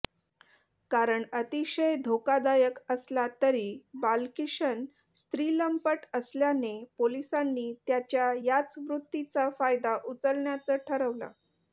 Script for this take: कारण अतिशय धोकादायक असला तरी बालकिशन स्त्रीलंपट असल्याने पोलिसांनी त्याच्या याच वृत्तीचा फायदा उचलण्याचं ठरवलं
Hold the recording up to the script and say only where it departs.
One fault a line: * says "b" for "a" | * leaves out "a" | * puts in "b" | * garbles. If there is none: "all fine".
all fine